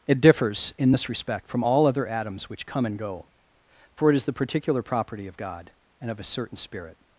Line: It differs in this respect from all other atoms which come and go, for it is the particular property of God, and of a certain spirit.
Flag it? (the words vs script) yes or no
no